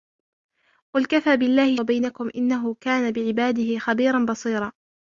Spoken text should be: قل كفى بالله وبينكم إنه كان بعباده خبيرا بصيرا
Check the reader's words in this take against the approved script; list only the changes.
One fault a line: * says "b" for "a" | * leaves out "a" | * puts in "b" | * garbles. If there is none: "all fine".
all fine